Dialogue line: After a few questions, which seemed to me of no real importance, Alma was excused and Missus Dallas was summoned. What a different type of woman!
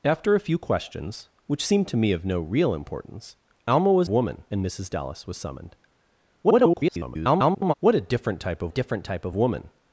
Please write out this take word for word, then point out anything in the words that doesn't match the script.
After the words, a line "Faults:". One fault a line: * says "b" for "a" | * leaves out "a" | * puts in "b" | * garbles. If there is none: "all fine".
After a few questions, which seemed to me of no real importance, Alma was woman and Missus Dallas was summoned. [garbled] What a different type of different type of woman!
Faults:
* says "woman" for "excused"
* garbles
* puts in "different type of"